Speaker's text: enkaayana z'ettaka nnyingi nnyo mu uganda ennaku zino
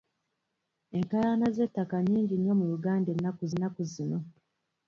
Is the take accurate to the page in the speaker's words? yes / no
no